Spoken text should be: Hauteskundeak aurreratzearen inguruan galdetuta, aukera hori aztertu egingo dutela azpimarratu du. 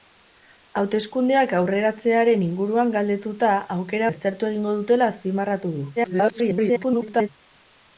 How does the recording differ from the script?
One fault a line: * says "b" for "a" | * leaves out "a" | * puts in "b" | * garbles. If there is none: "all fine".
* leaves out "hori"
* garbles